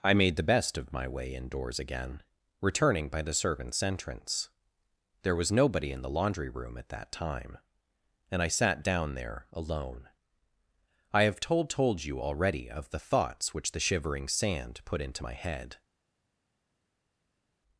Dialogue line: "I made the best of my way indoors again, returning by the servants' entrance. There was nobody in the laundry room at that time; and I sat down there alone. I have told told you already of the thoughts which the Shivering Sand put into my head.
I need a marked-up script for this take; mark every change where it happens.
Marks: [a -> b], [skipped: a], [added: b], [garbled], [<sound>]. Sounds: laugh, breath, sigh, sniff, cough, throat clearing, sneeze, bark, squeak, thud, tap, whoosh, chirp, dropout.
"I made the best of my way indoors again, returning by the servants' entrance. There was nobody in the laundry room at that time; and I sat down there alone. I have told told you already of the thoughts which the Shivering Sand put into my head.